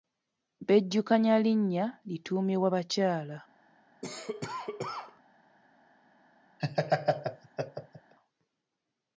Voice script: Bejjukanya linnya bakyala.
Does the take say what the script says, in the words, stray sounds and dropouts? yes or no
no